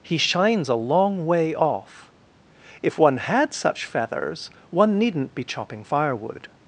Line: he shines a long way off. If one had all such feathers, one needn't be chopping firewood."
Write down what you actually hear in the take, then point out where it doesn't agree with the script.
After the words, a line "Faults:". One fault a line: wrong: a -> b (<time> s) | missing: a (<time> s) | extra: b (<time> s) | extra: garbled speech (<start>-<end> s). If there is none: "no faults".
he shines a long way off. If one had such feathers, one needn't be chopping firewood."
Faults:
missing: all (3.5 s)